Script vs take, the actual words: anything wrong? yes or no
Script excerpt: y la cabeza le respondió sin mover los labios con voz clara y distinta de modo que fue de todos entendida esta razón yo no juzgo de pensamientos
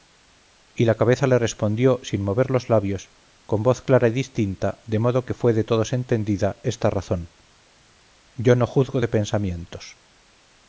no